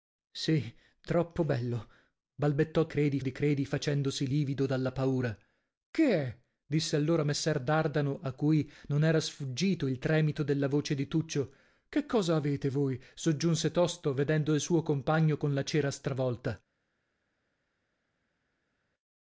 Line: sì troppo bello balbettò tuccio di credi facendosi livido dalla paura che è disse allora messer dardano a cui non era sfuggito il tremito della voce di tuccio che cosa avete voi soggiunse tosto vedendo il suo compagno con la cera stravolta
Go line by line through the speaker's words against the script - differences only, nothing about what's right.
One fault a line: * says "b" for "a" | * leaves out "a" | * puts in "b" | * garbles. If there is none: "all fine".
* says "credi" for "tuccio"